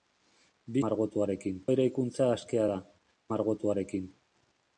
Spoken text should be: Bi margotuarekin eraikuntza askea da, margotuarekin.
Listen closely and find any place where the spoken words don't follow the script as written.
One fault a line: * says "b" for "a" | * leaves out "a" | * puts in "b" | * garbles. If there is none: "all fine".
all fine